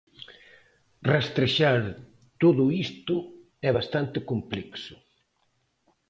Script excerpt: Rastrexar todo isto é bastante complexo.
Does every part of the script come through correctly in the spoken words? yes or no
yes